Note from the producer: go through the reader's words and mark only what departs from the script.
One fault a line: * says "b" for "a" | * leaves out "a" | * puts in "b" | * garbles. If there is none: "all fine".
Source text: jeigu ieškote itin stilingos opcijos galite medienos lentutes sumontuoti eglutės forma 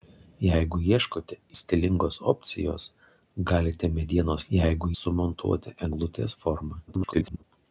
* leaves out "itin"
* says "jeigu" for "lentutes"
* garbles